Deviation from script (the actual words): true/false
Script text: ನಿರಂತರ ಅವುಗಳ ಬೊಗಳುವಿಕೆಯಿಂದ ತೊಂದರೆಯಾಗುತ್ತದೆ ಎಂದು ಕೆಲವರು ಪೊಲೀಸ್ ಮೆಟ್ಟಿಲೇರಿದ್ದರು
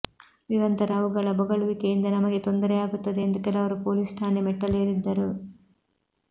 true